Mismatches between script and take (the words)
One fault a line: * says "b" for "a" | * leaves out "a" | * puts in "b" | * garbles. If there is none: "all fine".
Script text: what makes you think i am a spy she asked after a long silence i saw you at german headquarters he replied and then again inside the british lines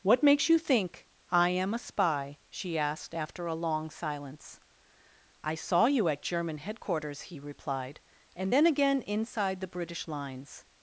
all fine